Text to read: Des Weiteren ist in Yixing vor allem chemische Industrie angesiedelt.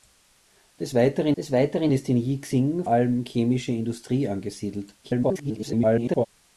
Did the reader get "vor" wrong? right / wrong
wrong